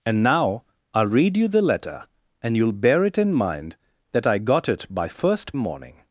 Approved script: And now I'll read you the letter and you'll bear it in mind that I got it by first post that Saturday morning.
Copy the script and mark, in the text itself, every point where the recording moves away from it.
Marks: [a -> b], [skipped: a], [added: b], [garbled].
And now I'll read you the letter and you'll bear it in mind that I got it by first [skipped: post that Saturday] morning.